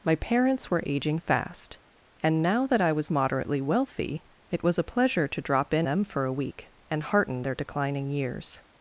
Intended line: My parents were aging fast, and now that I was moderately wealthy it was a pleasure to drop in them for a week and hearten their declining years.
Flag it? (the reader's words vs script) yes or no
no